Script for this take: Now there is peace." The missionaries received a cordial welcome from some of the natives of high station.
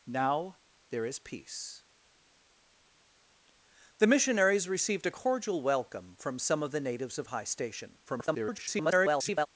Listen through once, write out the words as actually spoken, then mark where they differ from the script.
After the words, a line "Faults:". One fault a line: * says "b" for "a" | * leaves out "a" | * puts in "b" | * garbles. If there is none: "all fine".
Now there is peace." The missionaries received a cordial welcome from some of the natives of high station. [garbled]
Faults:
* garbles